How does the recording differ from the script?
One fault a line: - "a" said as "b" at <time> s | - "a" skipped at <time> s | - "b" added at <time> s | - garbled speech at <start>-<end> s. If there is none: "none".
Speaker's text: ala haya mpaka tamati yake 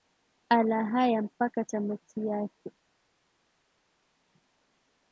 none